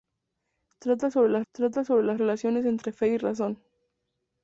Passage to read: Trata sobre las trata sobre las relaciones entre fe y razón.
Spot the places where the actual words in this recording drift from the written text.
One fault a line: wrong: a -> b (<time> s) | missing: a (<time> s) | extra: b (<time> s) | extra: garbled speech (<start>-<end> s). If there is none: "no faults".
no faults